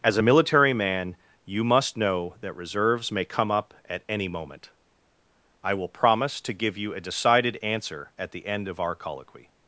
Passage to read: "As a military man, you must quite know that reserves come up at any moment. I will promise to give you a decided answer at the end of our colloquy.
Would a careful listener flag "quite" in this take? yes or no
yes